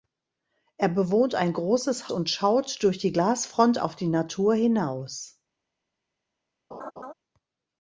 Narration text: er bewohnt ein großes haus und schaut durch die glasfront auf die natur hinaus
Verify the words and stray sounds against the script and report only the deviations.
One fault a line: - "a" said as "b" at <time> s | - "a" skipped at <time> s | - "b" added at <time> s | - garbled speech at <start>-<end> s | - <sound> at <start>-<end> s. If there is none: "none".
- "haus" skipped at 2.1 s
- laugh at 6.7-7.1 s